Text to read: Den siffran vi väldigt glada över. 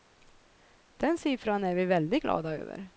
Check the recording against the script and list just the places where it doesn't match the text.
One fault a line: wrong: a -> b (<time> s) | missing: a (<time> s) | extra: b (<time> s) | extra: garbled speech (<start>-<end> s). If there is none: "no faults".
extra: är (1.6 s)